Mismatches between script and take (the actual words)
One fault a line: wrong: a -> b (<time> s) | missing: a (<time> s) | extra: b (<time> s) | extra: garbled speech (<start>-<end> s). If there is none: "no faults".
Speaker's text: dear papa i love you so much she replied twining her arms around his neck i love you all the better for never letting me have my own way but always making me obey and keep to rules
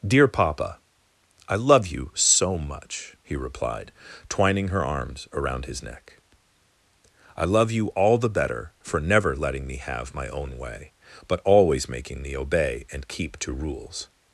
wrong: she -> he (3.2 s)